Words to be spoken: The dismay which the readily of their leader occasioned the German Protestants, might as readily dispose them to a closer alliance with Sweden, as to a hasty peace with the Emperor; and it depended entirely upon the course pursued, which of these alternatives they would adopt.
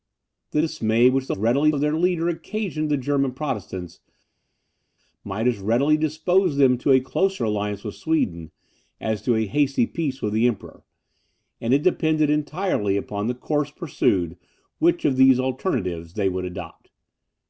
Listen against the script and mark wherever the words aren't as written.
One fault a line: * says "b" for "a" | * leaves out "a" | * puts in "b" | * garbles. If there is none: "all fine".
all fine